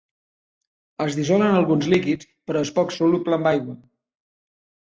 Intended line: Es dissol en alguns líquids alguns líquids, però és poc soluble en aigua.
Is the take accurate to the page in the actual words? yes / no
no